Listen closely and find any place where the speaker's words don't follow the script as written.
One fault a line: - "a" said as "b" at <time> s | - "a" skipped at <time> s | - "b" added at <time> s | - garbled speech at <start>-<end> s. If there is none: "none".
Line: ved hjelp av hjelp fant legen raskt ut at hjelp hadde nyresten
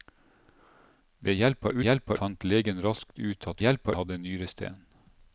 none